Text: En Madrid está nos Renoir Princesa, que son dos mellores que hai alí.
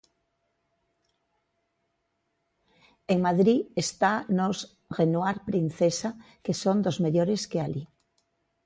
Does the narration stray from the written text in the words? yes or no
yes